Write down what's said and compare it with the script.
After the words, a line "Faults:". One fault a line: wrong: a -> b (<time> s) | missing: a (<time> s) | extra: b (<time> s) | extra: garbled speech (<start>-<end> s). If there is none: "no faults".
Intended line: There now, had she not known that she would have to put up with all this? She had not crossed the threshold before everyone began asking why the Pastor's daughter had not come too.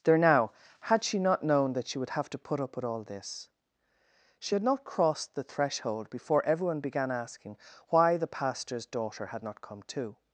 There now, had she not known that she would have to put up with all this? She had not crossed the threshold before everyone began asking why the Pastor's daughter had not come too.
Faults:
no faults